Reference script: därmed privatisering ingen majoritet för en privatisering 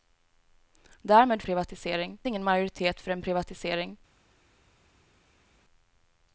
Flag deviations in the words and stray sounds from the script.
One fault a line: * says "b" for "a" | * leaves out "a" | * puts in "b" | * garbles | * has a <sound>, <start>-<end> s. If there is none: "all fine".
all fine